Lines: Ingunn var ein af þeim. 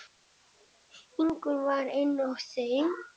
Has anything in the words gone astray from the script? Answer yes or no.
no